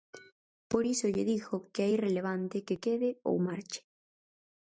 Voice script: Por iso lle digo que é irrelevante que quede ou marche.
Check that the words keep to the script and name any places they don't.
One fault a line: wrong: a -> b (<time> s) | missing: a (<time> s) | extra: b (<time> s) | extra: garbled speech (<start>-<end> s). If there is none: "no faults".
no faults